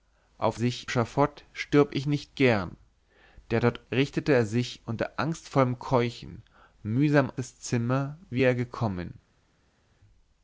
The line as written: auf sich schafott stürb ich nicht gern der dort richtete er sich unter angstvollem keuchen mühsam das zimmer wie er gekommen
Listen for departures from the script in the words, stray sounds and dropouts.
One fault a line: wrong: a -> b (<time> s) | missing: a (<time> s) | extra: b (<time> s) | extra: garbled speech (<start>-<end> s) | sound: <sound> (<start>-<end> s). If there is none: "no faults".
no faults